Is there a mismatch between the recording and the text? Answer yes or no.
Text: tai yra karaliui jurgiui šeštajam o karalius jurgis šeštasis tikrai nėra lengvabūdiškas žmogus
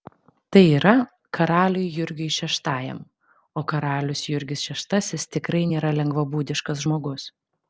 no